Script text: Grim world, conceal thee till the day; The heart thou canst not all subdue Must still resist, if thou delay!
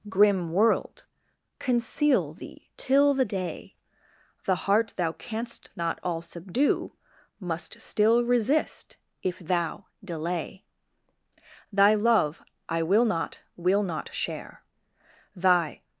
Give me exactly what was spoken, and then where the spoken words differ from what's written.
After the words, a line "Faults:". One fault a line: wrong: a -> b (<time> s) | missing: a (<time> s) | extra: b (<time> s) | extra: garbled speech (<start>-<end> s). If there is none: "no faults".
Grim world, conceal thee till the day; The heart thou canst not all subdue Must still resist, if thou delay! Thy love I will not, will not share; Thy
Faults:
extra: Thy love I will not will not share Thy (11.7 s)